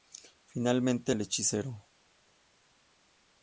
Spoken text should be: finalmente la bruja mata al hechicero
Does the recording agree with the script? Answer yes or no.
no